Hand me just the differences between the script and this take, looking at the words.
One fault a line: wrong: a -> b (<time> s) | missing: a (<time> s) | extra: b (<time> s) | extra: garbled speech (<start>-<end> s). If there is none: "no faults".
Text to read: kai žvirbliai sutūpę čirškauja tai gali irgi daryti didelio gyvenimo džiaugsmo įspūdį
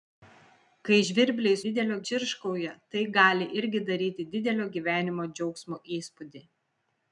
wrong: sutūpę -> didelio (1.7 s)